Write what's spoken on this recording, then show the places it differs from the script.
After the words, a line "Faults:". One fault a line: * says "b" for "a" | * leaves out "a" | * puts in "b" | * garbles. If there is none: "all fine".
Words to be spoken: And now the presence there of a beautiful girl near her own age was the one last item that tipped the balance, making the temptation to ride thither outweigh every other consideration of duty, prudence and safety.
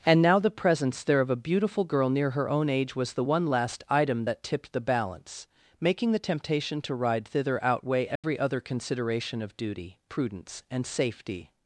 And now the presence there of a beautiful girl near her own age was the one last item that tipped the balance, making the temptation to ride thither outweigh every other consideration of duty, prudence and safety.
Faults:
all fine